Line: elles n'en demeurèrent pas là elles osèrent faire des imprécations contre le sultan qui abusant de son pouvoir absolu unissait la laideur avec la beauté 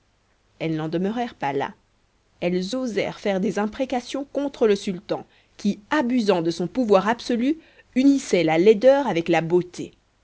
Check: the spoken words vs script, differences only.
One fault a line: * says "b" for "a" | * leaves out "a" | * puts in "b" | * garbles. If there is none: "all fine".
all fine